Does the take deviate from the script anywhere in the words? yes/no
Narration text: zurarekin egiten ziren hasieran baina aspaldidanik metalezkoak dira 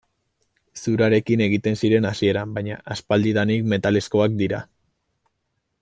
no